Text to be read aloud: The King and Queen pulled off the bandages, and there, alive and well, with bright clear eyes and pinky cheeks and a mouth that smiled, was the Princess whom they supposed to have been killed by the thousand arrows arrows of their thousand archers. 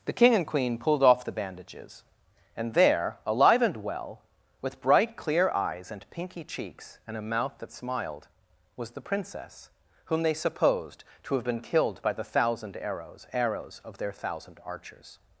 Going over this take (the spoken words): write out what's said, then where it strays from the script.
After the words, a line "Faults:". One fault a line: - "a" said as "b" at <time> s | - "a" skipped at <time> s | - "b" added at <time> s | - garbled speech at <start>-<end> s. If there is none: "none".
The King and Queen pulled off the bandages, and there, alive and well, with bright clear eyes and pinky cheeks and a mouth that smiled, was the Princess whom they supposed to have been killed by the thousand arrows arrows of their thousand archers.
Faults:
none